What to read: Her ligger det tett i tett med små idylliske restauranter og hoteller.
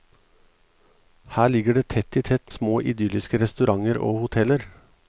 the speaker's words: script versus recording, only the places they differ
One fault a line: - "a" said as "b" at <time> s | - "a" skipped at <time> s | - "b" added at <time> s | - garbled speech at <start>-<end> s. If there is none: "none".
- "med" skipped at 2.5 s